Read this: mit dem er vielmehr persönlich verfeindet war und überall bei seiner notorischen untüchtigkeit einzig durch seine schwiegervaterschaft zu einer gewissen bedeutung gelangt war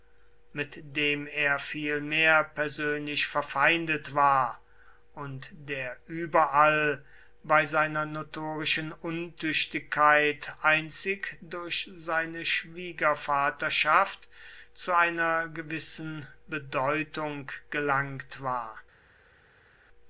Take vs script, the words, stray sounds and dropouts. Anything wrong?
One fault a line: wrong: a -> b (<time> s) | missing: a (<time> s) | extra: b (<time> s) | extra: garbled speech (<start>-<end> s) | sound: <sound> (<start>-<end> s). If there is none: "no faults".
extra: der (5.5 s)